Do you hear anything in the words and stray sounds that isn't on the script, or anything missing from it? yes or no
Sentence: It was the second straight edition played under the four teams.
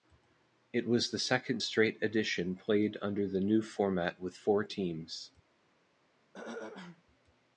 yes